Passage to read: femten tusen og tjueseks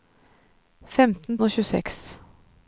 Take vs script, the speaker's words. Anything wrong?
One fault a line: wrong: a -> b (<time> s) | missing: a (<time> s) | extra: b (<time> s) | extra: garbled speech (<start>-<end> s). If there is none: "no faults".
missing: tusen (1.4 s)